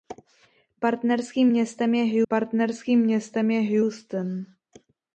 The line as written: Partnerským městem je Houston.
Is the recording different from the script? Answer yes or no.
yes